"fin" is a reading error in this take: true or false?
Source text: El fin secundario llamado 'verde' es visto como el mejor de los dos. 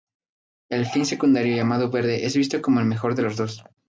false